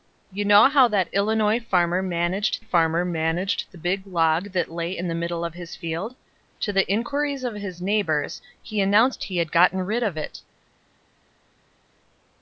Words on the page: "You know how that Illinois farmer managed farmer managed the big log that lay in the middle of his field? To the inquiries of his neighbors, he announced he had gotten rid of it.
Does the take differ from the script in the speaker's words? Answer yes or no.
no